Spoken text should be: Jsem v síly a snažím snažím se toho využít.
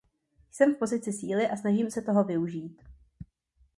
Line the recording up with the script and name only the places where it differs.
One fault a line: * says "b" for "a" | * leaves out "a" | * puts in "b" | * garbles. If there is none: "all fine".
* puts in "pozici"
* leaves out "snažím"